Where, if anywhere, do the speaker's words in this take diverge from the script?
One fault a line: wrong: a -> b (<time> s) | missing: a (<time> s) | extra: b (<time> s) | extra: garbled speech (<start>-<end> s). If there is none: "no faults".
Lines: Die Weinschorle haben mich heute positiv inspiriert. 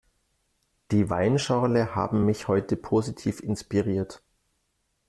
no faults